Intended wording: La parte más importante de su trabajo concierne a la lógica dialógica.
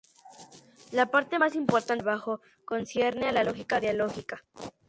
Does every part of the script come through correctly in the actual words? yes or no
yes